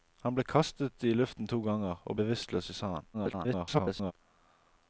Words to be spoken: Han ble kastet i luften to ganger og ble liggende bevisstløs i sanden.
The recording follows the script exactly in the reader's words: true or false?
false